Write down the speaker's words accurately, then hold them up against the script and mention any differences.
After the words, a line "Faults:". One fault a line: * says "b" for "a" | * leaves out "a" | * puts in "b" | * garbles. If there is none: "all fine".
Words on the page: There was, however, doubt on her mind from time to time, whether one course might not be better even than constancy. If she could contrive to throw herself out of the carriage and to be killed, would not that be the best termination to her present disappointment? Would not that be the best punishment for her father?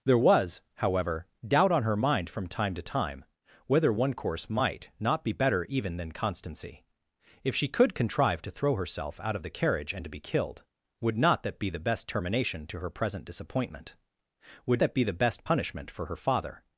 There was, however, doubt on her mind from time to time, whether one course might not be better even than constancy. If she could contrive to throw herself out of the carriage and to be killed, would not that be the best termination to her present disappointment? Would that be the best punishment for her father?
Faults:
* leaves out "not"